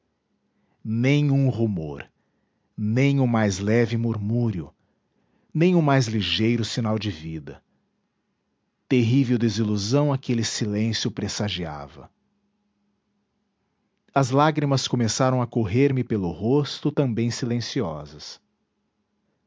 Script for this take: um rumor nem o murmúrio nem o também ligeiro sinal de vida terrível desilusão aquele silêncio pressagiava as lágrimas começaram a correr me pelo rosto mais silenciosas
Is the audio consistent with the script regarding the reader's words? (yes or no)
no